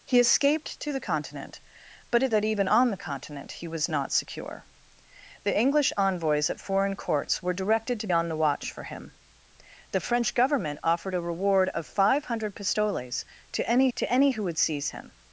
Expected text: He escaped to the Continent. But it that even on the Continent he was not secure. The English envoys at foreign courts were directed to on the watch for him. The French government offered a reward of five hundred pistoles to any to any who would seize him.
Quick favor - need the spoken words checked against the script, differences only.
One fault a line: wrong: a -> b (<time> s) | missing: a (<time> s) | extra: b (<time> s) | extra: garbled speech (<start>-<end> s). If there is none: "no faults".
no faults